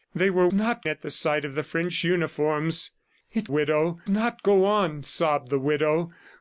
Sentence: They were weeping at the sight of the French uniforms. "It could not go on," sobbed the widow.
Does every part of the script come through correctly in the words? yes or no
no